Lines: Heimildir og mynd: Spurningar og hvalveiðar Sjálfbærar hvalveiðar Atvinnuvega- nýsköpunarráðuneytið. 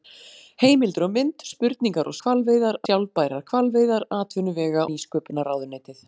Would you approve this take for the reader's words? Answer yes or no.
yes